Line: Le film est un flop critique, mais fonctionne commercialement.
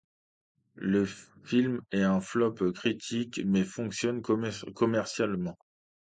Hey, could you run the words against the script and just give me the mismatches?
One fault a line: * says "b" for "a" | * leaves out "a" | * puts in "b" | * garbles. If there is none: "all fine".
all fine